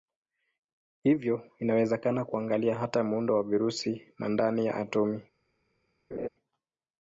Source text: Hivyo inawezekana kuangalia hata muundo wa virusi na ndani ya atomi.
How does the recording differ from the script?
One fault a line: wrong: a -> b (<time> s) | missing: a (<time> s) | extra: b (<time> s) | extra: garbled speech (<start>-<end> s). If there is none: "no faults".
no faults